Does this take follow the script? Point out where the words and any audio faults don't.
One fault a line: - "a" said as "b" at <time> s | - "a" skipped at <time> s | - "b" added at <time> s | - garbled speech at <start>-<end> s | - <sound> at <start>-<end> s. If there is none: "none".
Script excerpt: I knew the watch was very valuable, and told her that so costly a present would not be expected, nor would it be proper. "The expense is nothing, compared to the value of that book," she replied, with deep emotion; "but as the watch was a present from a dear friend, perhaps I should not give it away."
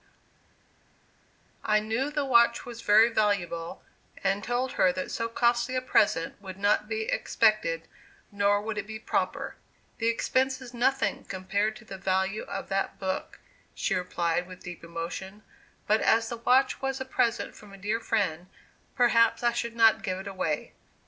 none